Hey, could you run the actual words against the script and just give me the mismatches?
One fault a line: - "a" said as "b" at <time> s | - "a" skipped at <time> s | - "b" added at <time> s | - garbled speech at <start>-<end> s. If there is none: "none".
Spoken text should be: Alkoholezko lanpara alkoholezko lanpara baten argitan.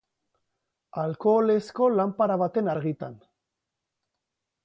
- "alkoholezko lanpara" skipped at 2.4 s